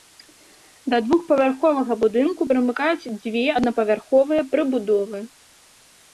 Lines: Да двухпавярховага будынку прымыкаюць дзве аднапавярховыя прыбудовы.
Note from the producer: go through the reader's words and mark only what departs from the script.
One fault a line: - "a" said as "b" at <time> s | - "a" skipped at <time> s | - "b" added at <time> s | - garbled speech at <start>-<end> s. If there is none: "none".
none